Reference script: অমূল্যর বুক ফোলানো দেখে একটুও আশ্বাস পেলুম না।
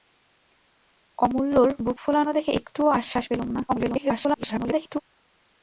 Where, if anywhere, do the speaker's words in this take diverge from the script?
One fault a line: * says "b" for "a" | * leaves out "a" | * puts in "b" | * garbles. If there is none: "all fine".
* garbles